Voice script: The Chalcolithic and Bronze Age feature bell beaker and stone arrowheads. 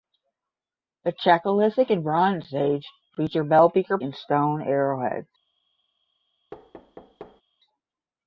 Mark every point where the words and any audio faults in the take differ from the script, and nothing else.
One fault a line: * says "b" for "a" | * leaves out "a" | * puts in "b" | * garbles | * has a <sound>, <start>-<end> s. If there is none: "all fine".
* has a thud, 6.5-7.4 s